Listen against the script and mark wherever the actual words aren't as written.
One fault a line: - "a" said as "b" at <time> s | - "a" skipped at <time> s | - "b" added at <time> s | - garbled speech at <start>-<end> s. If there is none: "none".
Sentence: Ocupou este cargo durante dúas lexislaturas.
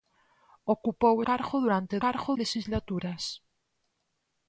- "este" skipped at 1.1 s
- "dúas" said as "cargo" at 2.0 s